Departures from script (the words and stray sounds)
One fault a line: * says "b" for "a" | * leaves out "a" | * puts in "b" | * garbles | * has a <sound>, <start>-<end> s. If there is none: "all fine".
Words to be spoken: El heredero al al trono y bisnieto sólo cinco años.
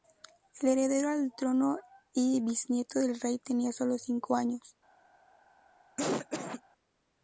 * leaves out "al"
* puts in "del Rey tenía"
* has a cough, 6.0-6.6 s